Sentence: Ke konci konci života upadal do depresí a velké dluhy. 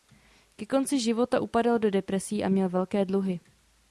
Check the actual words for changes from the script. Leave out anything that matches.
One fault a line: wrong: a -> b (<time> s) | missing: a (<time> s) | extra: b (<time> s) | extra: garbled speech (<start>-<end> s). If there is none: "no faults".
missing: konci (1.0 s)
extra: měl (2.5 s)